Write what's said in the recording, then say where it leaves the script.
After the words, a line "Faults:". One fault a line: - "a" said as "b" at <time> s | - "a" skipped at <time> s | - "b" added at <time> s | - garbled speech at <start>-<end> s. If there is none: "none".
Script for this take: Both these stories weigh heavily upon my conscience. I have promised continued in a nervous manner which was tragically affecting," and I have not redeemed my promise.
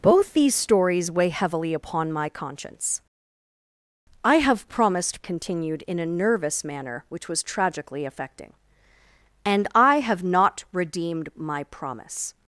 Both these stories weigh heavily upon my conscience. I have promised continued in a nervous manner which was tragically affecting," and I have not redeemed my promise.
Faults:
none